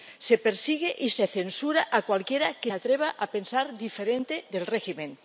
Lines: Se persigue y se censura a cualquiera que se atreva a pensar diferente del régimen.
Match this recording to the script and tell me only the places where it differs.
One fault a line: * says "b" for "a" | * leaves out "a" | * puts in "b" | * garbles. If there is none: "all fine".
* leaves out "se"